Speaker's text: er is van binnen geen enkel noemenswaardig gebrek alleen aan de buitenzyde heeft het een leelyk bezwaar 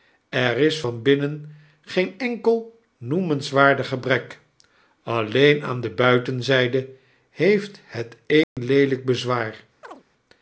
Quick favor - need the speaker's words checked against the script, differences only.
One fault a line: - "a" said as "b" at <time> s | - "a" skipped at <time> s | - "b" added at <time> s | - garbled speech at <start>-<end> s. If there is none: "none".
none